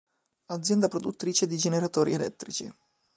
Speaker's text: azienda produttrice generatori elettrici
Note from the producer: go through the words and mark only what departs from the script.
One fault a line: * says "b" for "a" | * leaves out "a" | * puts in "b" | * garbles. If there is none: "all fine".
* puts in "di"